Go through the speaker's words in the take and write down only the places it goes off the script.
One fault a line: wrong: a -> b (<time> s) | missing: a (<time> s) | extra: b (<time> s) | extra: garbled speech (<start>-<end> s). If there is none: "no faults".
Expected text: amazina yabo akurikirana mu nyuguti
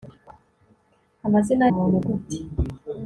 missing: yabo akurikirana (1.6 s)